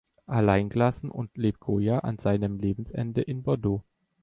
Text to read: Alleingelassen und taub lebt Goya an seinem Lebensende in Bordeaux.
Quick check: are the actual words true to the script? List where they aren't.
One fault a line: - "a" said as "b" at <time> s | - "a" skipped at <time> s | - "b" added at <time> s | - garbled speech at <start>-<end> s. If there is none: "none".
- "taub" skipped at 1.4 s